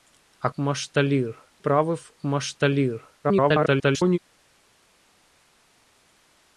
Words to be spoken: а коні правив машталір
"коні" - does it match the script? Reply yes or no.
no